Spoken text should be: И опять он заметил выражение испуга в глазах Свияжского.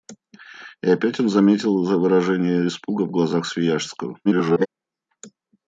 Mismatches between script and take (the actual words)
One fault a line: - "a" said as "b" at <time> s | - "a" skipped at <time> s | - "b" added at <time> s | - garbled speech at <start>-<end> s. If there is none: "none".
- garbled speech at 4.2-4.7 s